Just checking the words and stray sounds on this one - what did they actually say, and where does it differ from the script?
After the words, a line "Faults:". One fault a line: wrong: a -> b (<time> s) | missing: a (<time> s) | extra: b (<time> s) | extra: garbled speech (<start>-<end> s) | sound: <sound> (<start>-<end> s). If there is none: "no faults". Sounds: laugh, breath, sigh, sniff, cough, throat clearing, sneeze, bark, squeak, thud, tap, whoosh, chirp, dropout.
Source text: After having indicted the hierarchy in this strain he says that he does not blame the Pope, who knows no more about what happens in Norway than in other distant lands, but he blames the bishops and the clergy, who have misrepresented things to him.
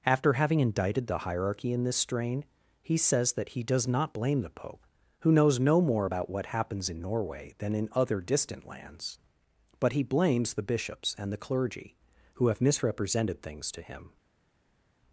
After having indicted the hierarchy in this strain he says that he does not blame the Pope, who knows no more about what happens in Norway than in other distant lands, but he blames the bishops and the clergy, who have misrepresented things to him.
Faults:
no faults